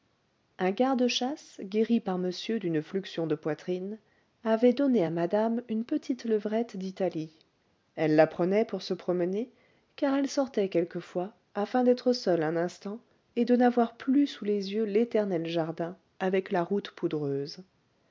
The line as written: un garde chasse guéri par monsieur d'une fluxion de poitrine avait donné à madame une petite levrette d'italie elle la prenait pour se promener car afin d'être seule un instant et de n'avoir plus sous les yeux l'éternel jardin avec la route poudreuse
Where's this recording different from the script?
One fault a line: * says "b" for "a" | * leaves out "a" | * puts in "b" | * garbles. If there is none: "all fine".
* puts in "elle sortait quelquefois"